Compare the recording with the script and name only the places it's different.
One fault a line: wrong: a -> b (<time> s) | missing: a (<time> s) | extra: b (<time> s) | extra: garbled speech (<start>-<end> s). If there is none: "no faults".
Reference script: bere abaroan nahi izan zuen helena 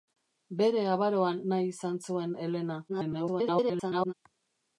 extra: garbled speech (2.9-4.1 s)